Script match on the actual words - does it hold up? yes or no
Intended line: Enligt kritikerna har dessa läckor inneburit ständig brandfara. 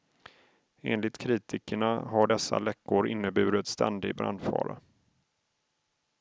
yes